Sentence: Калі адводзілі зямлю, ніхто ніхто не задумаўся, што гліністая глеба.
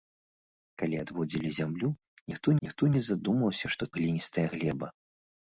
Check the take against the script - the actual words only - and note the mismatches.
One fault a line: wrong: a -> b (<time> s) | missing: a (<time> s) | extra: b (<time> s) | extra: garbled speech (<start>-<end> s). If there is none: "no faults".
no faults